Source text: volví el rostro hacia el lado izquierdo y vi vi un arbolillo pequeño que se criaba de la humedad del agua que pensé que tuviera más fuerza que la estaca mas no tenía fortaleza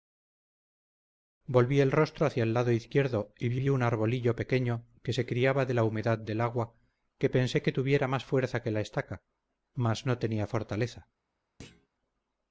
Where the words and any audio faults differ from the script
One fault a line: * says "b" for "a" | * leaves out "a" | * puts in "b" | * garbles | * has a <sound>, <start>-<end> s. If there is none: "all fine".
* has a thud, 11.6-11.9 s